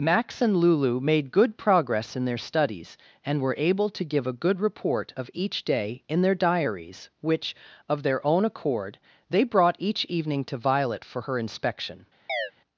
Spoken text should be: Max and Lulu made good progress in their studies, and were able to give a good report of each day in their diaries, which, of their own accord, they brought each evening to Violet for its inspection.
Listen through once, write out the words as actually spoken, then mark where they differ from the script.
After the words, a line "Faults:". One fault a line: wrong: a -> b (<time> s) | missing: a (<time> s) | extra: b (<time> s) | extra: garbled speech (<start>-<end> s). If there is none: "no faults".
Max and Lulu made good progress in their studies, and were able to give a good report of each day in their diaries, which, of their own accord, they brought each evening to Violet for her inspection.
Faults:
wrong: its -> her (11.2 s)